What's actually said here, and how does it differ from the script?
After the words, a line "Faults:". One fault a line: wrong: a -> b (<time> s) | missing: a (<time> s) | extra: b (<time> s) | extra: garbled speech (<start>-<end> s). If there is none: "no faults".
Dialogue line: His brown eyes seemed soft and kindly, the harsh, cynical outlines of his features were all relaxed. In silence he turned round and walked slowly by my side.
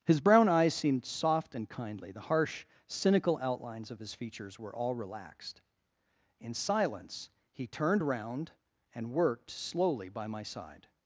His brown eyes seemed soft and kindly, the harsh, cynical outlines of his features were all relaxed. In silence he turned round and worked slowly by my side.
Faults:
wrong: walked -> worked (9.1 s)